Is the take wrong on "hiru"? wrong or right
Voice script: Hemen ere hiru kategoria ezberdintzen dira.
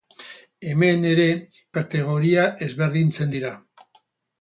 wrong